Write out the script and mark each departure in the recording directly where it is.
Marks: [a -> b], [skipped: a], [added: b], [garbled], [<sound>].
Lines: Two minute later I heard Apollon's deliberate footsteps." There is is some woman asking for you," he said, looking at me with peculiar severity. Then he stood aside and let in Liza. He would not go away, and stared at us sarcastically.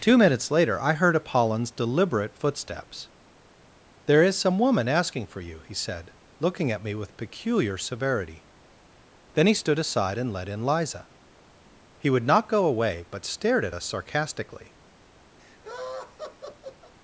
Two [minute -> minutes] later I heard Apollon's deliberate footsteps." There is [skipped: is] some woman asking for you," he said, looking at me with peculiar severity. Then he stood aside and let in Liza. He would not go away, [and -> but] stared at us sarcastically. [laugh]